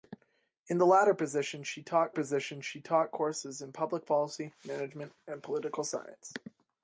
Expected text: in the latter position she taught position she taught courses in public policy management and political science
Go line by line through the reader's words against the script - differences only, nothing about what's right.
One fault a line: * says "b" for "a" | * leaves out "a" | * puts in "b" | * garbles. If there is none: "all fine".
all fine